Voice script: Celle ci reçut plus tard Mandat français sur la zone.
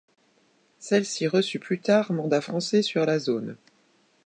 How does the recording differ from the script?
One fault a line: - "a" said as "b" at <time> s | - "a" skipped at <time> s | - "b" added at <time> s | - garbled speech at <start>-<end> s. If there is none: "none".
none